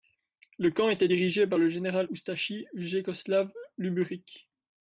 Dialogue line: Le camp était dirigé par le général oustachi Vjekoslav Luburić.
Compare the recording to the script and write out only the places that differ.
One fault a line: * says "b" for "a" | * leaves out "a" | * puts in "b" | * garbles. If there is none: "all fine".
all fine